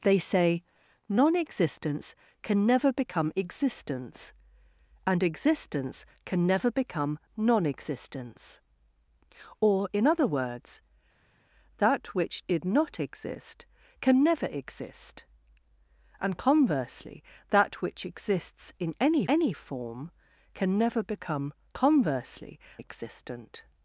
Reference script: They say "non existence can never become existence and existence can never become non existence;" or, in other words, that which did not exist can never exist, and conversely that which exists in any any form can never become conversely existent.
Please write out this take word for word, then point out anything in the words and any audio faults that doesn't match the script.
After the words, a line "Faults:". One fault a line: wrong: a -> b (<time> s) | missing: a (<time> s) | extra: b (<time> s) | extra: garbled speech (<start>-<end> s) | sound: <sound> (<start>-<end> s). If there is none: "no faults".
They say "non existence can never become existence and existence can never become non existence;" or, in other words, that which did not exist can never exist, and conversely that which exists in any any form can never become conversely existent.
Faults:
no faults